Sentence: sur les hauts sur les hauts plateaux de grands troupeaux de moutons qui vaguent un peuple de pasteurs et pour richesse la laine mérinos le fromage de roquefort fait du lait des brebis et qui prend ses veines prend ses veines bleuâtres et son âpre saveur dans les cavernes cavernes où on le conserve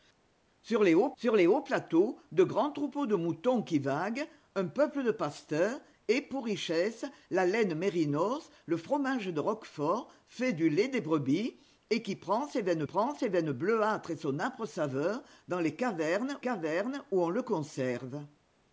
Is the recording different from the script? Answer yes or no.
no